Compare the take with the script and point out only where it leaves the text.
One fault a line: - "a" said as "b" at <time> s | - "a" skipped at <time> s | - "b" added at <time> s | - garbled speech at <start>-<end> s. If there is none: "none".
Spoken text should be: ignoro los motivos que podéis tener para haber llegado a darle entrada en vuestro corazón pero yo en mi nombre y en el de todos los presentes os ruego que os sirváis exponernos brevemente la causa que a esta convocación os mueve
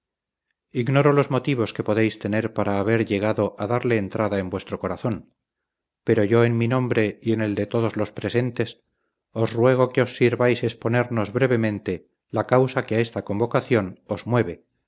none